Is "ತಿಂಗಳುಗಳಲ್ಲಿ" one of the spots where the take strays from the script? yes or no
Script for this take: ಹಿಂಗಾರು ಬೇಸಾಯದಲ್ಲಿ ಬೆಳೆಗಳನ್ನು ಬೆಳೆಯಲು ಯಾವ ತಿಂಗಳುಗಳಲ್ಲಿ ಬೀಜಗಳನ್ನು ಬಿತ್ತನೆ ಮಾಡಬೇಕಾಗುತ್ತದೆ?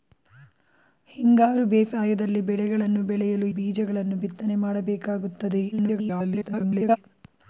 yes